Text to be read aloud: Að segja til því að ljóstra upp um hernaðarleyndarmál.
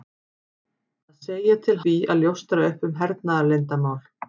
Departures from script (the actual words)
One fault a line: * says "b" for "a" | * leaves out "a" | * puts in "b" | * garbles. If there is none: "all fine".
all fine